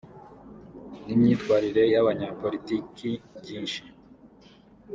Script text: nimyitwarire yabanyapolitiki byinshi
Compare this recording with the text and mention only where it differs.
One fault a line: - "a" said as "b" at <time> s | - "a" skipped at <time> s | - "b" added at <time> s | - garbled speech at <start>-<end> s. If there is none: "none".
none